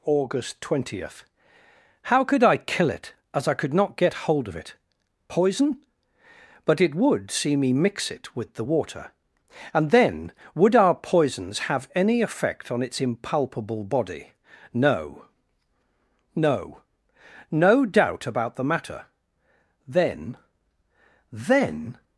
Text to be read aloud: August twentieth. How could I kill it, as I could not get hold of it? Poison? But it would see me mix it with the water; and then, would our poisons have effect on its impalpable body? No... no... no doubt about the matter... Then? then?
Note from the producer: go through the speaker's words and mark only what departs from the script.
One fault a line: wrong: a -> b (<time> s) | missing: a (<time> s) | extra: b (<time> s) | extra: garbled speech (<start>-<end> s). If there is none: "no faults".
extra: any (11.9 s)